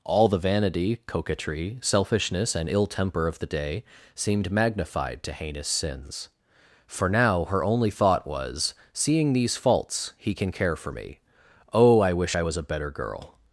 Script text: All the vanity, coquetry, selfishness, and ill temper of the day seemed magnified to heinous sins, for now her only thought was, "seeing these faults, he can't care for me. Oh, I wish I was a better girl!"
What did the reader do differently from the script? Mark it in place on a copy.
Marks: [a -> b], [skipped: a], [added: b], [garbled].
All the vanity, coquetry, selfishness, and ill temper of the day seemed magnified to heinous sins, for now her only thought was, "seeing these faults, he [can't -> can] care for me. Oh, I wish I was a better girl!"